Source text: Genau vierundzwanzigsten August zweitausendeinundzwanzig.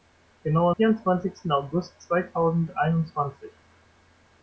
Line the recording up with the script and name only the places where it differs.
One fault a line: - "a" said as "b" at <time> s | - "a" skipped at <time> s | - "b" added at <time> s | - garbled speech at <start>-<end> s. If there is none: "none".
none